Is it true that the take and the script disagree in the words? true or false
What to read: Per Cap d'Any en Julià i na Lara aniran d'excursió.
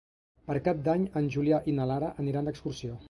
false